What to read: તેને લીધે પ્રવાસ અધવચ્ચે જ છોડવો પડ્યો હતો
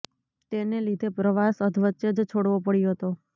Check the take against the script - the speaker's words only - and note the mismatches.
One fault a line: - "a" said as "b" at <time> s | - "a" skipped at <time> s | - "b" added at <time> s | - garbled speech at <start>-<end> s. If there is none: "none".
none